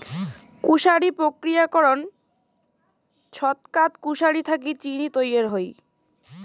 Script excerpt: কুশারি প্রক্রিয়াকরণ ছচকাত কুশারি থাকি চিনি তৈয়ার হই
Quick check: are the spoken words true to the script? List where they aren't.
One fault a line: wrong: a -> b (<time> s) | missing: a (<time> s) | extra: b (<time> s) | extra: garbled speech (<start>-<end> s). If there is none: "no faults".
no faults